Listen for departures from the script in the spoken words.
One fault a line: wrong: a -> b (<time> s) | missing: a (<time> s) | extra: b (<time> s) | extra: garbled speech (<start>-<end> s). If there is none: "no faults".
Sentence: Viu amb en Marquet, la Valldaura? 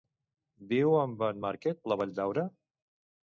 no faults